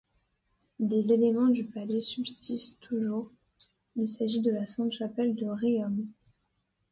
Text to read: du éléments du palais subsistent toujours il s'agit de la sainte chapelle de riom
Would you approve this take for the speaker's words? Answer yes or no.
no